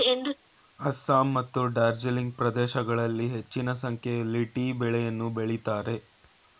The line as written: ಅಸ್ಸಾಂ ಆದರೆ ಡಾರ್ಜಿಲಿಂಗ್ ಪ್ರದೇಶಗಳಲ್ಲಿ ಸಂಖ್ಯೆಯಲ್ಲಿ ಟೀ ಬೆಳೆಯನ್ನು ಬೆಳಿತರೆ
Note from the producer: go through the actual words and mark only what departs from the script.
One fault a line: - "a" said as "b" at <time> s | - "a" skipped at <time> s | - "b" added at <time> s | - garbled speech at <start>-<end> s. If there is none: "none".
- "ಆದರೆ" said as "ಮತ್ತು" at 1.3 s
- "ಹೆಚ್ಚಿನ" added at 3.3 s